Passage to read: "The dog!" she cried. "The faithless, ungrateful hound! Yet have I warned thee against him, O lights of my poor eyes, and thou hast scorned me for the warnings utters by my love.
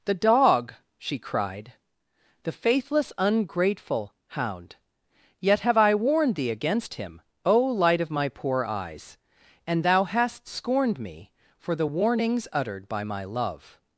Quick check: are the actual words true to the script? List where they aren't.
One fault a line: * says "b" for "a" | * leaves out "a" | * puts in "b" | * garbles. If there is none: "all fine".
* says "light" for "lights"
* says "uttered" for "utters"